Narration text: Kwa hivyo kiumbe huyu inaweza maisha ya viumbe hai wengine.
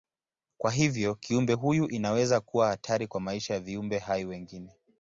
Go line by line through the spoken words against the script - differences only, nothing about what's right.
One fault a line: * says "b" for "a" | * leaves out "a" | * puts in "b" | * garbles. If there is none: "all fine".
* puts in "kuwa hatari kwa"